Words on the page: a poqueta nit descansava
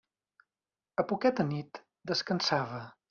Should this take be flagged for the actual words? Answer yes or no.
no